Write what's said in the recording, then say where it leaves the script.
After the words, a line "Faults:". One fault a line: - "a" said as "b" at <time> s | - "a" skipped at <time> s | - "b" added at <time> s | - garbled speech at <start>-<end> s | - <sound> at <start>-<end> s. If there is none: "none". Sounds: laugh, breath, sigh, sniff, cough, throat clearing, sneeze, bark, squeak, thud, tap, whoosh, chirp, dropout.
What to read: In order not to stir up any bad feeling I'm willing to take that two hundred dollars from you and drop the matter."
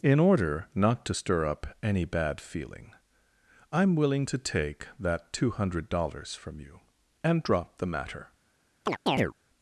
In order not to stir up any bad feeling I'm willing to take that two hundred dollars from you and drop the matter."
Faults:
- chirp at 8.9-9.3 s